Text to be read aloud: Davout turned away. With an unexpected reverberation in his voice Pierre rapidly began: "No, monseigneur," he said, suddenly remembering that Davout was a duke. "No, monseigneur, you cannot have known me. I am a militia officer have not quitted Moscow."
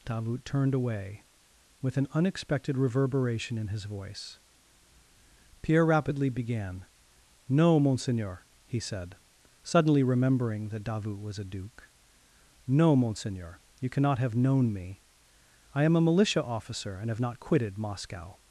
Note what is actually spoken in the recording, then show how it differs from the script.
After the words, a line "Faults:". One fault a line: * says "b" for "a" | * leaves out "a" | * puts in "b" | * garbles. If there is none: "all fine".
Davout turned away. With an unexpected reverberation in his voice Pierre rapidly began: "No, monseigneur," he said, suddenly remembering that Davout was a duke. "No, monseigneur, you cannot have known me. I am a militia officer and have not quitted Moscow."
Faults:
* puts in "and"